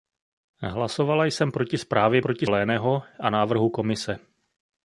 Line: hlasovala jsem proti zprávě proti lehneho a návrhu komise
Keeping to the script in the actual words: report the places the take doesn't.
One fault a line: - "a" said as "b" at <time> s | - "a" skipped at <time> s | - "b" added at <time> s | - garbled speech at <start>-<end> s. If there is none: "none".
none